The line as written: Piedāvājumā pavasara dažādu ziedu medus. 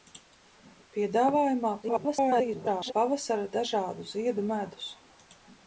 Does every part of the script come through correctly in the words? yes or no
no